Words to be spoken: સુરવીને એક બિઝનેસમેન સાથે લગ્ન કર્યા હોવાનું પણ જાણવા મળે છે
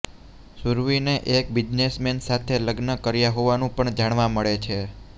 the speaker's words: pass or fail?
pass